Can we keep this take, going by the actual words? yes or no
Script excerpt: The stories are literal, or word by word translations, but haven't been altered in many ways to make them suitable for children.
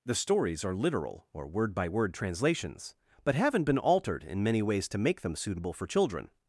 yes